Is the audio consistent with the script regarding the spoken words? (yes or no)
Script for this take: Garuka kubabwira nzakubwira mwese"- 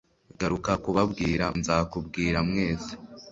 yes